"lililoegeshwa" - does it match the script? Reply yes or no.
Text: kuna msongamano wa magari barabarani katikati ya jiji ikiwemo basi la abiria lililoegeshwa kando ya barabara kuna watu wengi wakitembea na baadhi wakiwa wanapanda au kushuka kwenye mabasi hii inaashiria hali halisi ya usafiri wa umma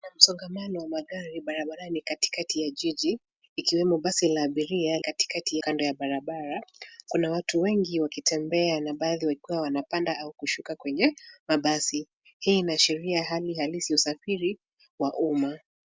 no